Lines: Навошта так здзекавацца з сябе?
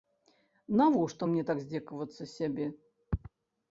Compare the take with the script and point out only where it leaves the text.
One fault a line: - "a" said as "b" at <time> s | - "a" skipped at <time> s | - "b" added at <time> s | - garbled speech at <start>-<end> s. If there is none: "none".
- "мне" added at 1.3 s